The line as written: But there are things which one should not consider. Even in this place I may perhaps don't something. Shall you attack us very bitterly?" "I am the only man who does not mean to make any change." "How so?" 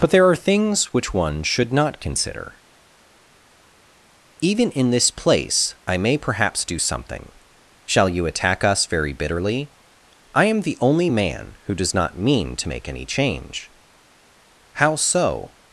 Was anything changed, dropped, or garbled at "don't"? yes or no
yes